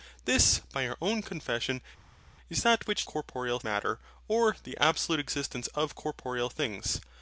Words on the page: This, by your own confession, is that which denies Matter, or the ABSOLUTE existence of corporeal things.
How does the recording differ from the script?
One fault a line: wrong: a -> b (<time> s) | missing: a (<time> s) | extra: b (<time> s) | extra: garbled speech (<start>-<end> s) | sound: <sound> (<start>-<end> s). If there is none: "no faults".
wrong: denies -> corporeal (3.0 s)